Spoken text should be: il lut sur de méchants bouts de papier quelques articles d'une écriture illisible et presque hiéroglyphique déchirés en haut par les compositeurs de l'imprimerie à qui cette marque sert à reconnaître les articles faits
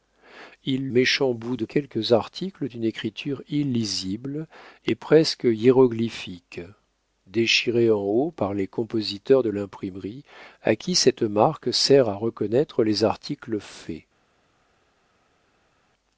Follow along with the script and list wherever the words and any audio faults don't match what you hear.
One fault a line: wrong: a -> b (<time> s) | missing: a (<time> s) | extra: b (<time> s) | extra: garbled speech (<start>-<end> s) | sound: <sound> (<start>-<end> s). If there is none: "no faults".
missing: lut sur de (0.9 s)
missing: papier (1.6 s)